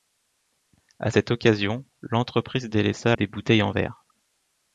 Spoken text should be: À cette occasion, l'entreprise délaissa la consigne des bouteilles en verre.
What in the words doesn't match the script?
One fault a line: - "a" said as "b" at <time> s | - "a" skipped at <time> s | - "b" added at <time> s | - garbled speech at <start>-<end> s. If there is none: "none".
- "la consigne" skipped at 3.2 s